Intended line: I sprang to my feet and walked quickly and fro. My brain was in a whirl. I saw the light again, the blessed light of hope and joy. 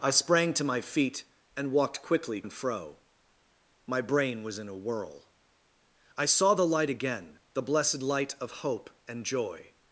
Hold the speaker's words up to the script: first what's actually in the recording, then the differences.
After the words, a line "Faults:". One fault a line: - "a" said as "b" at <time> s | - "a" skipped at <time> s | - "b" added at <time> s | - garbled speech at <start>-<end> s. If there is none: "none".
I sprang to my feet and walked quickly and fro. My brain was in a whirl. I saw the light again, the blessed light of hope and joy.
Faults:
none